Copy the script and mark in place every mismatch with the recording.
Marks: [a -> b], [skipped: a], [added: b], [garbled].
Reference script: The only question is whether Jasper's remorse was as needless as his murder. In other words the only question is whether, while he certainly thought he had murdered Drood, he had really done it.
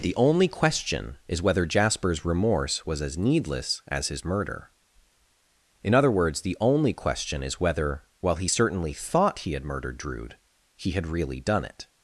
The only question is whether Jasper's remorse was as needless as his murder. In other words the only question is whether, while he certainly thought he had murdered Drood, he had really done it.